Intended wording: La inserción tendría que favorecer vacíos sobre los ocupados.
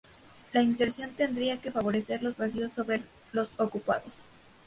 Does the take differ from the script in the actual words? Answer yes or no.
yes